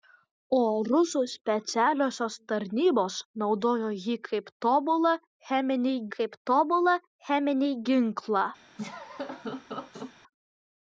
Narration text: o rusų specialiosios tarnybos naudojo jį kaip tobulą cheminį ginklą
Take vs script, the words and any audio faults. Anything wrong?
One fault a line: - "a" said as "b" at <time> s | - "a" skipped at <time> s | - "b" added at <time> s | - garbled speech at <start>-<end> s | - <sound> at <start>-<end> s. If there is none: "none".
- "kaip tobulą cheminį" added at 6.2 s
- laugh at 8.8-10.1 s